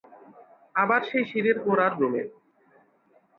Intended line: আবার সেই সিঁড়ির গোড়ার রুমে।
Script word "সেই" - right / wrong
right